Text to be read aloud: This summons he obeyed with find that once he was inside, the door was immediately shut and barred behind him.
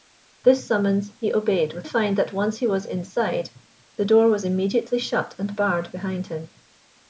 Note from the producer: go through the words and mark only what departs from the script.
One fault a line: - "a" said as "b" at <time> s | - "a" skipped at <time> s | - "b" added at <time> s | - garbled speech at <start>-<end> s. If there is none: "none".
none